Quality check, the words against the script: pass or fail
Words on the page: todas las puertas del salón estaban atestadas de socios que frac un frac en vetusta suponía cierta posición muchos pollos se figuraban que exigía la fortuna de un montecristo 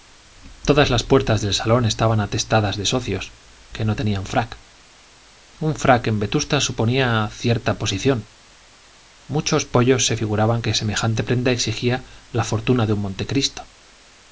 fail